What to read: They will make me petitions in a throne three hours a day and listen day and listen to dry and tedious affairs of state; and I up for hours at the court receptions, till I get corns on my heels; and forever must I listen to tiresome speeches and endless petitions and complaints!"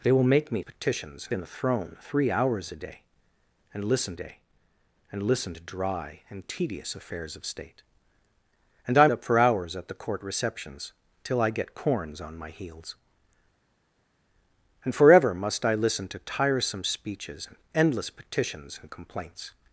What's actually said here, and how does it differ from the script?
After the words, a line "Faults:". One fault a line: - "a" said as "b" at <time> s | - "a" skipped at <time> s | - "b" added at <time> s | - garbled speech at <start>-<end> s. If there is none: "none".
They will make me petitions in a throne three hours a day and listen day and listen to dry and tedious affairs of state; and I up for hours at the court receptions, till I get corns on my heels; and forever must I listen to tiresome speeches and endless petitions and complaints!"
Faults:
none